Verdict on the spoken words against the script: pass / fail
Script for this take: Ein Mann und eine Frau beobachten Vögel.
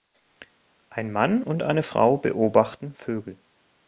pass